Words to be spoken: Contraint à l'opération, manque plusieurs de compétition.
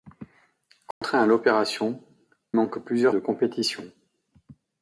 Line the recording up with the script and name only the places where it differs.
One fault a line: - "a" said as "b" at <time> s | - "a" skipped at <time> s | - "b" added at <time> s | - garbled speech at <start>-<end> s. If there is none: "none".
none